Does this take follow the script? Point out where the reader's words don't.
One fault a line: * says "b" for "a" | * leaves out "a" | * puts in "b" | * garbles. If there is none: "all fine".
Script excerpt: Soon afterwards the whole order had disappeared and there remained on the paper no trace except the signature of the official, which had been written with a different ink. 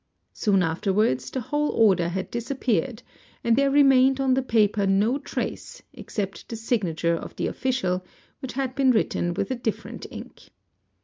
all fine